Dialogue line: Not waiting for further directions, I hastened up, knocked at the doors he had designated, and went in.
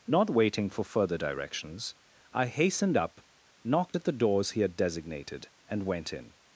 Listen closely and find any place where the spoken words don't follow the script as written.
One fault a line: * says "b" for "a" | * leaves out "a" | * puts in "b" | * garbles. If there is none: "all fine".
all fine